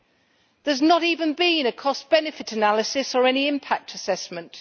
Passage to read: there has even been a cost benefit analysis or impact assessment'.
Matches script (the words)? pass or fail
fail